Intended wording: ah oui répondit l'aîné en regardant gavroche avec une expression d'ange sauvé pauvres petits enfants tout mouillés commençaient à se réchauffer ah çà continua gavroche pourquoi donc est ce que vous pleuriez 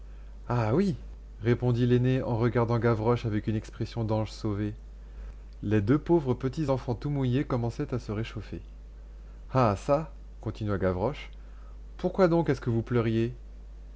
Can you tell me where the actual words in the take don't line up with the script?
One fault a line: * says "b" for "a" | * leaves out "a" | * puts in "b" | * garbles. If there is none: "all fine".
* puts in "les deux"